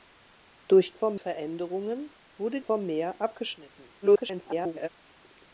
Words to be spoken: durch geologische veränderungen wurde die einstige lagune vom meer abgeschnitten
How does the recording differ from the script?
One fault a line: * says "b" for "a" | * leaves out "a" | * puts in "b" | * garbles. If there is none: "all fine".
* says "vom" for "geologische"
* leaves out "die einstige lagune"
* garbles